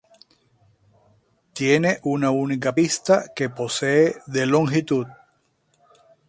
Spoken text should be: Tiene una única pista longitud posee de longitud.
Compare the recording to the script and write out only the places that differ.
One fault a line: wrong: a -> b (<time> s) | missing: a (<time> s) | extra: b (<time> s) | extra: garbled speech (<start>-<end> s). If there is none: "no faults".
wrong: longitud -> que (3.3 s)